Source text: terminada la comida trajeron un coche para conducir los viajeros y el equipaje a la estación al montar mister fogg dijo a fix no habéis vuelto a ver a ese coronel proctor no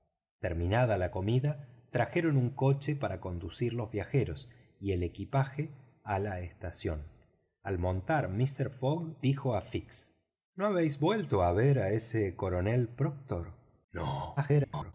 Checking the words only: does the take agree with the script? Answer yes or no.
no